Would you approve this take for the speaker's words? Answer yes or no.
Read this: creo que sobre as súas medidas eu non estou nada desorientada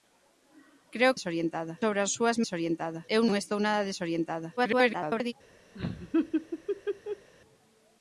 no